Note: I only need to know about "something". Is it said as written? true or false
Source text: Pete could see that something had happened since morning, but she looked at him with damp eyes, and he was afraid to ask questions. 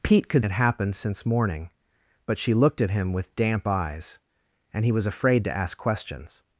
false